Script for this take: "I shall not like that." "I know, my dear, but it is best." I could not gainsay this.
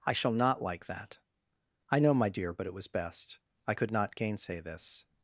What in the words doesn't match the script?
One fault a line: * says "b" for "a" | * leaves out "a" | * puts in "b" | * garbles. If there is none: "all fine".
* says "was" for "is"